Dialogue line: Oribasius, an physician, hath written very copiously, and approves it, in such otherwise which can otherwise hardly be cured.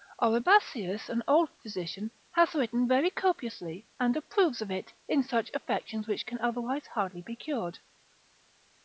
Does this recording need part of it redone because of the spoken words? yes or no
yes